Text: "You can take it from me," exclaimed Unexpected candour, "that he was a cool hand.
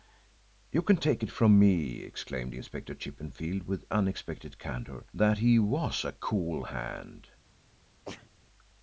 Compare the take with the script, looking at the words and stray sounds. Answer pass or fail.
fail